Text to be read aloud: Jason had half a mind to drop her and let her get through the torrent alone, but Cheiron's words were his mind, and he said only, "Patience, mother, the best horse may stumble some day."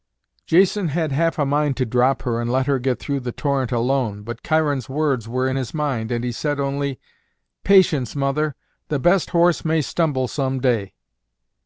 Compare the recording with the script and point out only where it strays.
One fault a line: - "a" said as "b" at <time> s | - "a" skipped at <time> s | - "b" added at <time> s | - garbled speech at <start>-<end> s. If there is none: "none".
- "in" added at 5.5 s